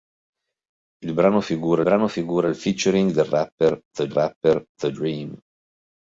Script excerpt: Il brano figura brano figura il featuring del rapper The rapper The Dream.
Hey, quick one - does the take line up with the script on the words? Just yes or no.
yes